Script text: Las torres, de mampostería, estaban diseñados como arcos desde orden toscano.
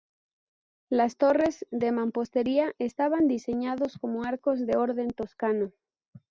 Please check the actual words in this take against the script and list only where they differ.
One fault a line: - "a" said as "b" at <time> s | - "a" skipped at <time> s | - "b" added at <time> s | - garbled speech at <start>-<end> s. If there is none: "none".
- "desde" said as "de" at 4.7 s